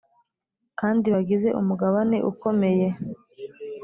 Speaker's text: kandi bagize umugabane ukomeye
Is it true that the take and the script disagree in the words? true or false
false